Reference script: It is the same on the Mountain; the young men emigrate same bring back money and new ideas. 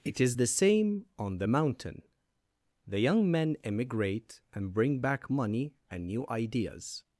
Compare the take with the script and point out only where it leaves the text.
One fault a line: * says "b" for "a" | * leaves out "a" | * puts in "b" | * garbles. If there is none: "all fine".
* says "and" for "same"